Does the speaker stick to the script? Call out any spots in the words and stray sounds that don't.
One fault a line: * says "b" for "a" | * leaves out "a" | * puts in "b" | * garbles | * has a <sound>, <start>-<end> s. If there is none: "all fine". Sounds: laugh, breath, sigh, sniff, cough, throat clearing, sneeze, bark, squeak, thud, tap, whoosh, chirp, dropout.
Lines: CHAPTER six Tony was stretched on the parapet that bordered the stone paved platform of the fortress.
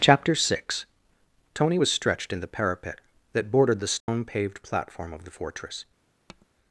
* says "in" for "on"
* has a dropout, 4.0-4.1 s
* has a tap, 6.3-6.5 s